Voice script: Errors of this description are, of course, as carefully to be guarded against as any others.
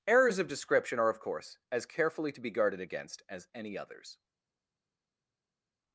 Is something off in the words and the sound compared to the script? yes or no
yes